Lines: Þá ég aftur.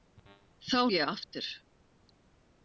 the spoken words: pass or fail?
pass